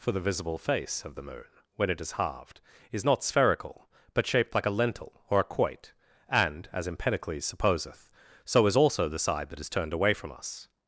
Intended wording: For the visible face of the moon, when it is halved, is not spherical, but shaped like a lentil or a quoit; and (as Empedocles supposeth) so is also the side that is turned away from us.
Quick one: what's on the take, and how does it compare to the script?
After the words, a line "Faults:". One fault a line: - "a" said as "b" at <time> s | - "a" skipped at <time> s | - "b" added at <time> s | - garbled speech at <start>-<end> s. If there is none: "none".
For the visible face of the moon, when it is halved, is not spherical, but shaped like a lentil or a quoit; and (as Empedocles supposeth) so is also the side that is turned away from us.
Faults:
none